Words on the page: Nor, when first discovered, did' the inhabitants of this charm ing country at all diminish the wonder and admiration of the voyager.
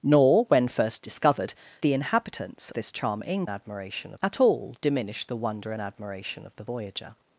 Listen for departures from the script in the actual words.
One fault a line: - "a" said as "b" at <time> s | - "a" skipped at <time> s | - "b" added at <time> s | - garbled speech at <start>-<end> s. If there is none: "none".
- "did" skipped at 1.5 s
- "of" skipped at 2.7 s
- "country" said as "admiration" at 3.5 s